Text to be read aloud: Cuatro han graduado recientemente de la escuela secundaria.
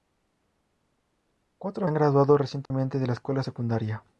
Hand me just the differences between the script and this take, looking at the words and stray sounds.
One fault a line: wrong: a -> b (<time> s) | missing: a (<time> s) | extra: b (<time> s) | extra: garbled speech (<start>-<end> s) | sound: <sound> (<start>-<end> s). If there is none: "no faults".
sound: dropout (2.7-2.7 s)